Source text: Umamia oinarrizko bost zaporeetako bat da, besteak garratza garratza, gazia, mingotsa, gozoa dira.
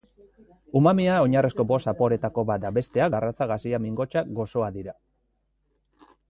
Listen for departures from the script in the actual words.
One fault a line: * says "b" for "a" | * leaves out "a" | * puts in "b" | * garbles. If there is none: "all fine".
* leaves out "garratza"